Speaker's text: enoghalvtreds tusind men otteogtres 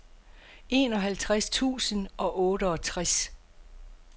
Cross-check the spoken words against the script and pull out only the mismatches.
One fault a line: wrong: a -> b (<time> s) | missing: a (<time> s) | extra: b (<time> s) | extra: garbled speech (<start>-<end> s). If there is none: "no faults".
wrong: men -> og (2.2 s)